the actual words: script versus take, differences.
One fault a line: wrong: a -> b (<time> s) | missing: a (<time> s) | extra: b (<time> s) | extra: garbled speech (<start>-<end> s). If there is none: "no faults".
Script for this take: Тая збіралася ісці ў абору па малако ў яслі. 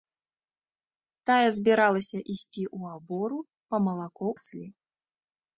missing: ў (4.3 s)